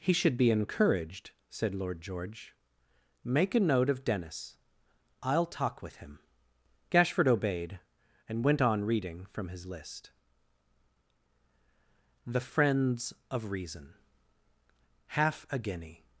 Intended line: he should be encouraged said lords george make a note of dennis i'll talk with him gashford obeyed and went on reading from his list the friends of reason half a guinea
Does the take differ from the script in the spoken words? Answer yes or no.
yes